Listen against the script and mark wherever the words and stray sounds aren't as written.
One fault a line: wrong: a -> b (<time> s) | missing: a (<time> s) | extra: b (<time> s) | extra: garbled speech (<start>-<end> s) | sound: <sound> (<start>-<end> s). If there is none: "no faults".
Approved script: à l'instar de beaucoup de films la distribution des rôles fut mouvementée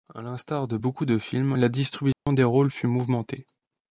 sound: dropout (2.1-2.3 s)